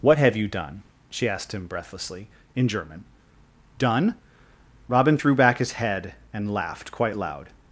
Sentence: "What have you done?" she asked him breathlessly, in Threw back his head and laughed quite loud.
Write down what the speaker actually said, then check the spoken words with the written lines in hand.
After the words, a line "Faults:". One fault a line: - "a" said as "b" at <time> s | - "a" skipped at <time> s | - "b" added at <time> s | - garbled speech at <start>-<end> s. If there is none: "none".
"What have you done?" she asked him breathlessly, in German. "Done?" Robin threw back his head and laughed quite loud.
Faults:
- "German Done Robin" added at 2.7 s